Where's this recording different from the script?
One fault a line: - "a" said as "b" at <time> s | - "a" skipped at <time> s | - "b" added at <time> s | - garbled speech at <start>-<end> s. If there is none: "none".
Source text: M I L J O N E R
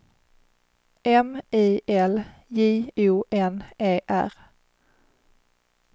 none